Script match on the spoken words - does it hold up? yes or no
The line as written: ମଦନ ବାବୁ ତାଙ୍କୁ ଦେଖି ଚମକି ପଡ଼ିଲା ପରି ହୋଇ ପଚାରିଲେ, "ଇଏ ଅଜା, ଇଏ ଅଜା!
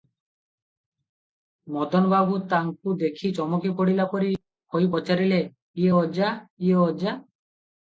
yes